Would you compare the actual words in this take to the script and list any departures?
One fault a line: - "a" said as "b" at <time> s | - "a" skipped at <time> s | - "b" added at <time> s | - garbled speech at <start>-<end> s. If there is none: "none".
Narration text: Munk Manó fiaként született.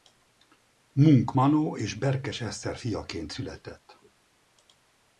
- "és Berkes Eszter" added at 1.7 s